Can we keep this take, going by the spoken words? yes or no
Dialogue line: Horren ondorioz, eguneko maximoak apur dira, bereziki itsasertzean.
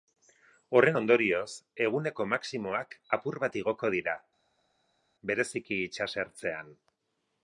no